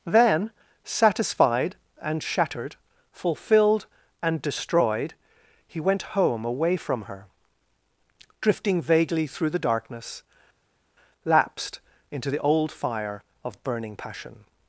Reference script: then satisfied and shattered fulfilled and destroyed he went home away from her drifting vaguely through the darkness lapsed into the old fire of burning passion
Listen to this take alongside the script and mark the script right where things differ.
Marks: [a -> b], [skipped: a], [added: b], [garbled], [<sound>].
then satisfied and shattered fulfilled and destroyed he went home away from her drifting vaguely through the darkness lapsed into the old fire of burning passion